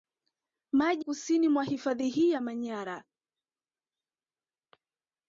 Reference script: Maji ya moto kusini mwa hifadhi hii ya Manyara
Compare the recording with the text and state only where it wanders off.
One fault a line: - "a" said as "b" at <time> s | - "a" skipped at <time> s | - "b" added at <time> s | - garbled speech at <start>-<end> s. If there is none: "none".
- "ya moto" skipped at 1.1 s